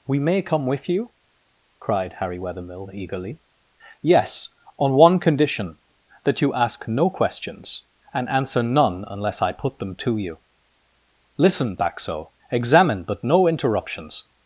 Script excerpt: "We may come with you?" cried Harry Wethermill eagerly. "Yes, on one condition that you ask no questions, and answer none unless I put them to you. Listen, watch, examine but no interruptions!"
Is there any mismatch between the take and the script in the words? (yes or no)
yes